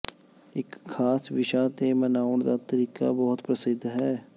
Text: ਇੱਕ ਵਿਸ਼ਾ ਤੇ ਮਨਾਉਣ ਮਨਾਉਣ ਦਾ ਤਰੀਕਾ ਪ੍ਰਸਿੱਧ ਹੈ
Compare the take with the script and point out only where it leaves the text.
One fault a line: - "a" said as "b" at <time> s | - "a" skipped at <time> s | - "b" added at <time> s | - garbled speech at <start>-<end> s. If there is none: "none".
- "ਖਾਸ" added at 0.9 s
- "ਮਨਾਉਣ" skipped at 2.4 s
- "ਬਹੁਤ" added at 3.1 s